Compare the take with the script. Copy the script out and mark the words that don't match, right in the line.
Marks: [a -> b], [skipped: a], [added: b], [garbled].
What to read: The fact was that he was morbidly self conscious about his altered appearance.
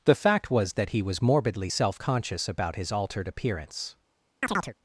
The fact was that he was morbidly self conscious about his altered appearance.